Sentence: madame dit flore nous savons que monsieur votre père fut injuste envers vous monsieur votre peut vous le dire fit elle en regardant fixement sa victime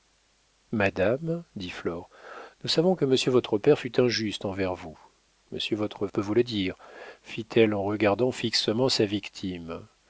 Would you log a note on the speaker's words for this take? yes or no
no